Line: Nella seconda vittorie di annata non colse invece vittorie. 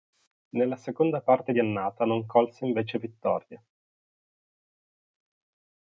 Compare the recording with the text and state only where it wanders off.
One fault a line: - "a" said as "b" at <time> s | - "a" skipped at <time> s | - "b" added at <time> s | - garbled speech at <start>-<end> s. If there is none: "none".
- "vittorie" said as "parte" at 1.2 s